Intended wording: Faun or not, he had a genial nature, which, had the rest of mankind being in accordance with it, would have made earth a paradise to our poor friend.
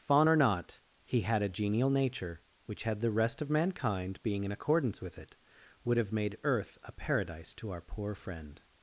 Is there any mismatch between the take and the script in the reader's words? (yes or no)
no